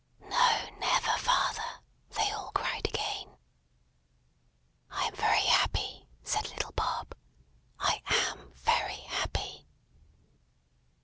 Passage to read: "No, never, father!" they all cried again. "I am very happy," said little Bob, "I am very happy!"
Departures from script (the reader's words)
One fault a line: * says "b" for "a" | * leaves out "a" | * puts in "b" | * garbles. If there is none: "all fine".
all fine